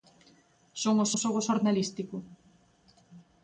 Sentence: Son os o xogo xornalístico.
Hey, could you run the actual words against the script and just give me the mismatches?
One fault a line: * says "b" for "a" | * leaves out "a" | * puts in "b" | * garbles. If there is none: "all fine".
all fine